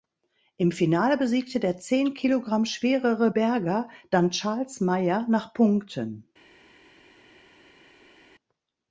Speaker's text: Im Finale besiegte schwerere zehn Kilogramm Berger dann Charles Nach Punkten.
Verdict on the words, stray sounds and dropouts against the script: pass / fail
fail